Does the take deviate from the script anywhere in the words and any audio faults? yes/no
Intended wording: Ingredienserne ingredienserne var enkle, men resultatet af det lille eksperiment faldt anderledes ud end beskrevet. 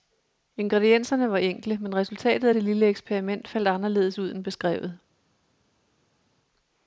yes